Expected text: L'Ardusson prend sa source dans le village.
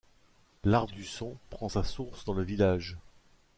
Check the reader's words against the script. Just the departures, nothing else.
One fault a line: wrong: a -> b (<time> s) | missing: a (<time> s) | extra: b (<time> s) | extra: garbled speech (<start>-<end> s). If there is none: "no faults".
no faults